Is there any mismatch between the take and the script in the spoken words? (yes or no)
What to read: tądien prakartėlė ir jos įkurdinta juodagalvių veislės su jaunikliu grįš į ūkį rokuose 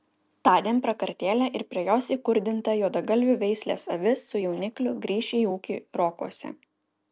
yes